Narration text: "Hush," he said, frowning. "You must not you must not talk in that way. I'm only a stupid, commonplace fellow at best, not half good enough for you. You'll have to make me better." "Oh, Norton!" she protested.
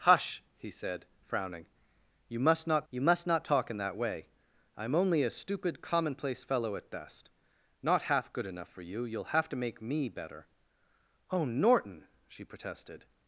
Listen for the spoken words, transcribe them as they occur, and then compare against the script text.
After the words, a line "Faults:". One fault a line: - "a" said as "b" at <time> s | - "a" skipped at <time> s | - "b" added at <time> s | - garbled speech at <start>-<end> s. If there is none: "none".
"Hush," he said, frowning. "You must not you must not talk in that way. I'm only a stupid, commonplace fellow at best, not half good enough for you. You'll have to make me better." "Oh, Norton!" she protested.
Faults:
none